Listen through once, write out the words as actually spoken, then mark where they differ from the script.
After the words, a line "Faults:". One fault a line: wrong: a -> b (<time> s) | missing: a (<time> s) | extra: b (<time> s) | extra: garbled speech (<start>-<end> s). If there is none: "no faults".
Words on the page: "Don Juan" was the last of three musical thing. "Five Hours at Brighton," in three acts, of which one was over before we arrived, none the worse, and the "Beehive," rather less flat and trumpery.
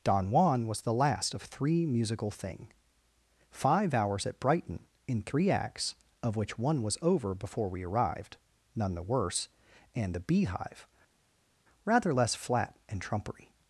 "Don Juan" was the last of three musical thing. "Five Hours at Brighton," in three acts, of which one was over before we arrived, none the worse, and the "Beehive," rather less flat and trumpery.
Faults:
no faults